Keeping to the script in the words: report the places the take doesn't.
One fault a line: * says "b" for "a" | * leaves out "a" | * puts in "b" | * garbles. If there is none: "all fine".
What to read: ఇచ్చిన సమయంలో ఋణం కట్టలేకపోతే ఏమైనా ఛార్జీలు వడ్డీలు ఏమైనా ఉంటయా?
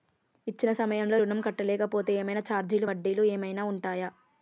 all fine